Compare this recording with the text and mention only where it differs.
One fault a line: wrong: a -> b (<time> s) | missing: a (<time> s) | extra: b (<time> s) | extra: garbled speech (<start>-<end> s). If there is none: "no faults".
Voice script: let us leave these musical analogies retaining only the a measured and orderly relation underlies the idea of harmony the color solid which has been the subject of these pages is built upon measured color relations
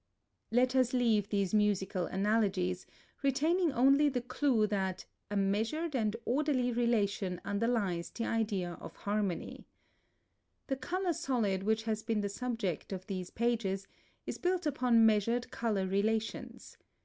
extra: clue that (4.2 s)